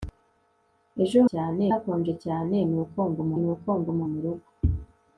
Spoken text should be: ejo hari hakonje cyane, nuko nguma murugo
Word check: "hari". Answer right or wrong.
wrong